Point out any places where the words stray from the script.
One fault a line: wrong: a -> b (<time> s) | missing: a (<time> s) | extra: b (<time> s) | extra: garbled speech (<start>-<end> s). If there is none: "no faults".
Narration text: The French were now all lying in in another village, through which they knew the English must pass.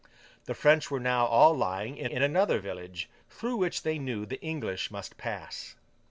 no faults